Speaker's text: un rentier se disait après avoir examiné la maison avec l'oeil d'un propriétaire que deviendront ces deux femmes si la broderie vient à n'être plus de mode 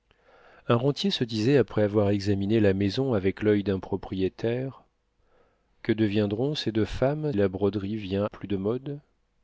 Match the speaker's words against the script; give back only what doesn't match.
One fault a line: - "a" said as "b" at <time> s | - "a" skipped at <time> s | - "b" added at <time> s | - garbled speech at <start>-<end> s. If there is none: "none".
- "si" skipped at 7.3 s
- "à n'être" skipped at 8.2 s